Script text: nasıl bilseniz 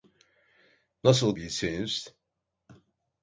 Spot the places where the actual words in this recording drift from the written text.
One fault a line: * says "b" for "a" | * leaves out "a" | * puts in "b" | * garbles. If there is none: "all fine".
all fine